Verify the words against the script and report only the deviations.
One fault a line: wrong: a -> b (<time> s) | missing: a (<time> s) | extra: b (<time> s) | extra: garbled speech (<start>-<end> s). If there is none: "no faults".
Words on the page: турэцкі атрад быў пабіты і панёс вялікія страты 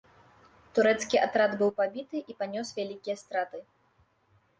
no faults